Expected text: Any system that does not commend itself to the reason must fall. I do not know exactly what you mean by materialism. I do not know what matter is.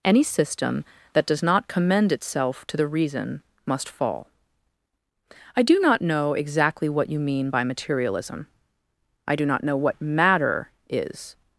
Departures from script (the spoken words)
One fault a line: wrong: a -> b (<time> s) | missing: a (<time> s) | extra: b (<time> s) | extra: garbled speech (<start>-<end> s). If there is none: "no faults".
no faults